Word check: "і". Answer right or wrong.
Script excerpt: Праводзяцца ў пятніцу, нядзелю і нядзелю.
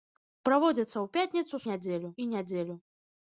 right